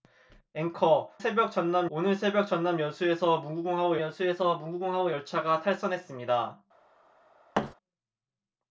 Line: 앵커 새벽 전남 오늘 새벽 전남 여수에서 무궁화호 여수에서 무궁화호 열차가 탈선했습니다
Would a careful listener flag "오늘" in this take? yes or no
no